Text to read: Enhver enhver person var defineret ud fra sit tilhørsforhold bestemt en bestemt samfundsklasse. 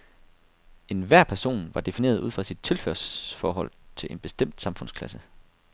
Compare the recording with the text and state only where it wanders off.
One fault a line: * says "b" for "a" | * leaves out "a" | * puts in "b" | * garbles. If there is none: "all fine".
* leaves out "enhver"
* says "til" for "bestemt"